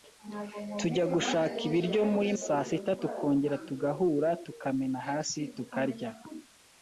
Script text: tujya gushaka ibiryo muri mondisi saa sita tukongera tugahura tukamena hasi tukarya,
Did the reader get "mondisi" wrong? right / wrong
wrong